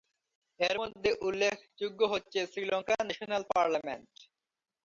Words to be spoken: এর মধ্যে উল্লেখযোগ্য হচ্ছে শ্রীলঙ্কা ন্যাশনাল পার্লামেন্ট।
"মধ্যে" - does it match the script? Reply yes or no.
yes